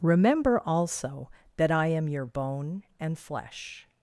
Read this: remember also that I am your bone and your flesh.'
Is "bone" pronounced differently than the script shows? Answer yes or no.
no